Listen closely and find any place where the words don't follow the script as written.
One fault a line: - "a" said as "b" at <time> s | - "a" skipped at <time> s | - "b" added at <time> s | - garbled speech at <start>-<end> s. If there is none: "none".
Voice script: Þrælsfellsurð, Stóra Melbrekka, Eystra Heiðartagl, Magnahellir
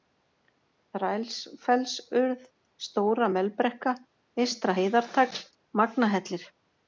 none